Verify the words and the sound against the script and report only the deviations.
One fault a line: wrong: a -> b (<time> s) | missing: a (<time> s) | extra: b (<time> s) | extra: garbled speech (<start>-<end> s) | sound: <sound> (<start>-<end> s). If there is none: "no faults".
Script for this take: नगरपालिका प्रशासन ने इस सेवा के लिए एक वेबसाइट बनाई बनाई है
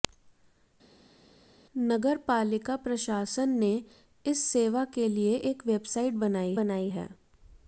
no faults